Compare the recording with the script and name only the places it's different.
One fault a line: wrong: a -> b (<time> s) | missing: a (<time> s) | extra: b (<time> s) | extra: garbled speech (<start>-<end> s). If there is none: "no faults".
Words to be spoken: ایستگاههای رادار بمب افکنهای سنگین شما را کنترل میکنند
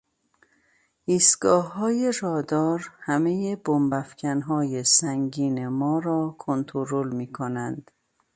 extra: همهی (3.0 s)
wrong: شما -> ما (5.7 s)